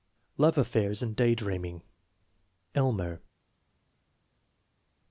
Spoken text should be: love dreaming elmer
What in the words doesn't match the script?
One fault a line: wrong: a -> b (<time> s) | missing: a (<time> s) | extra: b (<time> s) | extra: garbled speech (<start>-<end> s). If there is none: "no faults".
extra: affairs and day (0.6 s)